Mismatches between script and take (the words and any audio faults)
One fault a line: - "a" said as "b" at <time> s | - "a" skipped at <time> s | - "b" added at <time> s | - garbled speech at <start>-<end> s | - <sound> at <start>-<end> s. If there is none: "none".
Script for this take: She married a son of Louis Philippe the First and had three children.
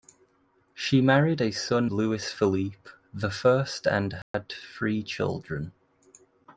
- "of" skipped at 1.9 s
- dropout at 4.2-4.3 s